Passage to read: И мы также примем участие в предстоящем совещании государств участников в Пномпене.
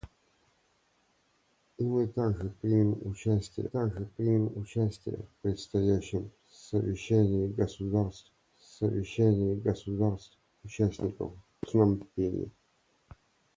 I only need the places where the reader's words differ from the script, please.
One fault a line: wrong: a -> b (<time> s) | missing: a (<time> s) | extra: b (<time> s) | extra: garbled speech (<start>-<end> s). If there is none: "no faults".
extra: также примем участие (3.6 s)
extra: совещании государств (8.6 s)